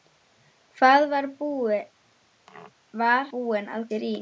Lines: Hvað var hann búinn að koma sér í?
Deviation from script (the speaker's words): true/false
true